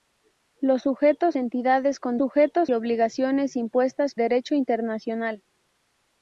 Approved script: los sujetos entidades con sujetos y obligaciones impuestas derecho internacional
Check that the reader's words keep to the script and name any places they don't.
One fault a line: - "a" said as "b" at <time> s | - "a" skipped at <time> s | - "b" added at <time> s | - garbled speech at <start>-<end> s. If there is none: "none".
none